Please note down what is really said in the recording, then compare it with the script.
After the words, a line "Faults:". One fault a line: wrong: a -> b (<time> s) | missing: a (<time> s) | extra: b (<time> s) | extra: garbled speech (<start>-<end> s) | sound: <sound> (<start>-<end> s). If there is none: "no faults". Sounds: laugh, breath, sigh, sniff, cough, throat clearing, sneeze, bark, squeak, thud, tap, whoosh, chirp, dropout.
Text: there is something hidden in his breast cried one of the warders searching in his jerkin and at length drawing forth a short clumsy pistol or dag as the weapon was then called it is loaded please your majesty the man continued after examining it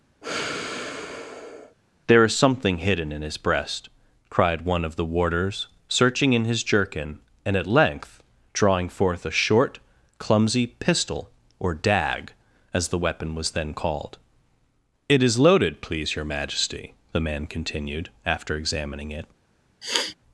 there is something hidden in his breast cried one of the warders searching in his jerkin and at length drawing forth a short clumsy pistol or dag as the weapon was then called it is loaded please your majesty the man continued after examining it
Faults:
sound: sigh (0.2-1.8 s)
sound: sniff (19.8-20.2 s)